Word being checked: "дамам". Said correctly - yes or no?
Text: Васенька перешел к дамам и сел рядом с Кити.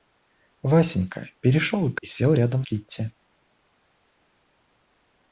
no